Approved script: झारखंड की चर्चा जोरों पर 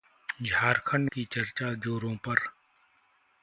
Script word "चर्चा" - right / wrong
right